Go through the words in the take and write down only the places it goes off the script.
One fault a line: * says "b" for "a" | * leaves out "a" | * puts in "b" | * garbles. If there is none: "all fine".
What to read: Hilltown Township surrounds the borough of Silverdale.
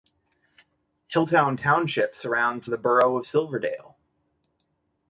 all fine